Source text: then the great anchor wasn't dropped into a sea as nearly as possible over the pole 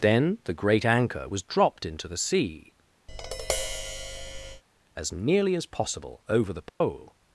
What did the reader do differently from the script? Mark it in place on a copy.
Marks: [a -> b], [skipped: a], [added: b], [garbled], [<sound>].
then the great anchor [wasn't -> was] dropped into [a -> the] sea [tap] as nearly as possible over the pole [dropout]